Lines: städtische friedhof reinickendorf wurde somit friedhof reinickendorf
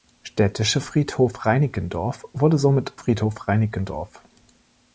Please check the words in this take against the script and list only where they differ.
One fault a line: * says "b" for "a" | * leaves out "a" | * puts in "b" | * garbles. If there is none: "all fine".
all fine